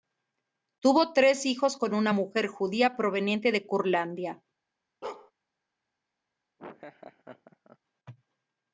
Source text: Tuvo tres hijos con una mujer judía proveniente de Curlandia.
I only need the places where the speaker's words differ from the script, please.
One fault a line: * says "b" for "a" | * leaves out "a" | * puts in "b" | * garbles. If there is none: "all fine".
all fine